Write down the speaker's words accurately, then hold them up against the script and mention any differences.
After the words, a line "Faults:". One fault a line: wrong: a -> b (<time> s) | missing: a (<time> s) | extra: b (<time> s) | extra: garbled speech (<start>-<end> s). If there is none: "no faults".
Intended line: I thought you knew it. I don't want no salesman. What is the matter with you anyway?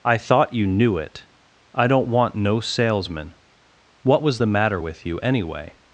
I thought you knew it. I don't want no salesman. What was the matter with you anyway?
Faults:
wrong: is -> was (4.2 s)